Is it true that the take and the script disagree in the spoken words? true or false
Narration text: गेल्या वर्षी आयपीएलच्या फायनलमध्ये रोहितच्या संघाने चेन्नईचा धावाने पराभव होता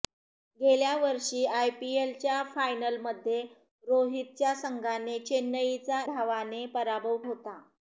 false